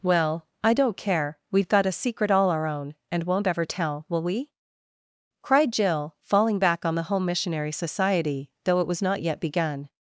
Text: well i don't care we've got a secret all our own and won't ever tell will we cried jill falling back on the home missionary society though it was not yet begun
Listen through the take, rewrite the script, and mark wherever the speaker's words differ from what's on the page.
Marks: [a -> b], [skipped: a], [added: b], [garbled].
well i don't care we've got a secret all our own and won't ever tell will we cried jill falling back on the home missionary society though it was not yet begun